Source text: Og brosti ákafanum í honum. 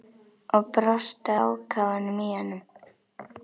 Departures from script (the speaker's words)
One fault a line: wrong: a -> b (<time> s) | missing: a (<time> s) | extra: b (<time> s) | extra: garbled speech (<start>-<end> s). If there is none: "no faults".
no faults